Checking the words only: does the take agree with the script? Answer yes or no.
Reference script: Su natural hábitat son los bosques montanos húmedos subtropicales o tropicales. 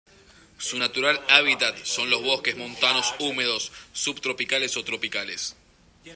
yes